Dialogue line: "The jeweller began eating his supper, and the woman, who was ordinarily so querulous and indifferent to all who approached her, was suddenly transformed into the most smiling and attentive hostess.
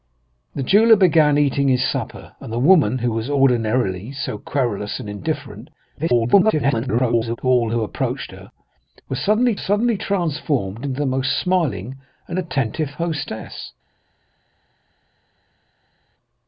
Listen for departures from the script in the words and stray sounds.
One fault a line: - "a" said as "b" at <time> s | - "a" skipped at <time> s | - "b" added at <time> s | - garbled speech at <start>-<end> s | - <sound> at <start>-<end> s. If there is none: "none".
- garbled speech at 6.0-7.4 s
- "suddenly" added at 9.6 s